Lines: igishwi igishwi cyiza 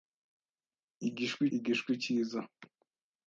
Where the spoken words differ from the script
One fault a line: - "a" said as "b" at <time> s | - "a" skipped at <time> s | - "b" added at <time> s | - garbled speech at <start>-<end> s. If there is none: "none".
none